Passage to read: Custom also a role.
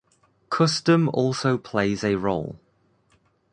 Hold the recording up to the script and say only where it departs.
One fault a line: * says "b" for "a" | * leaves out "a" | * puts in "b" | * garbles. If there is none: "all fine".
* puts in "plays"